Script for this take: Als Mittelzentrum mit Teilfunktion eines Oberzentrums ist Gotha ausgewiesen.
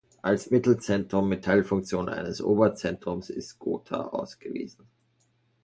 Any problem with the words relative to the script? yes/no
no